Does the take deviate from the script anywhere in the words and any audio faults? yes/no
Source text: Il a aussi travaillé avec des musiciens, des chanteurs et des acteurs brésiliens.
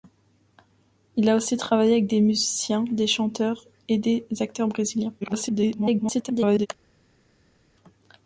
yes